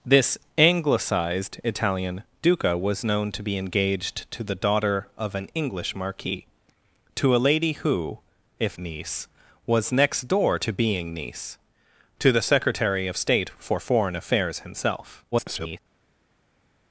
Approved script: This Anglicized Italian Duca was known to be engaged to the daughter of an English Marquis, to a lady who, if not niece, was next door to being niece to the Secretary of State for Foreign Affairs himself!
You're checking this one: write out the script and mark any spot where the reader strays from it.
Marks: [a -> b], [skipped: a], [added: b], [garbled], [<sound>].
This Anglicized Italian Duca was known to be engaged to the daughter of an English Marquis, to a lady who, if [skipped: not] niece, was next door to being niece to the Secretary of State for Foreign Affairs himself! [garbled]